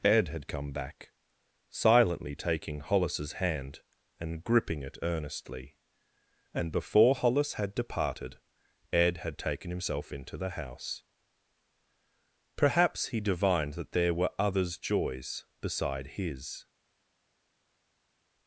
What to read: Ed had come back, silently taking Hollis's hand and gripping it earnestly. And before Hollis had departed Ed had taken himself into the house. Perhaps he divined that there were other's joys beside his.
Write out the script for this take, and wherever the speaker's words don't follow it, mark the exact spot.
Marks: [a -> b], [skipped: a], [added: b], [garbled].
Ed had come back, silently taking Hollis's hand and gripping it earnestly. And before Hollis had departed Ed had taken himself into the house. Perhaps he divined that there were other's joys beside his.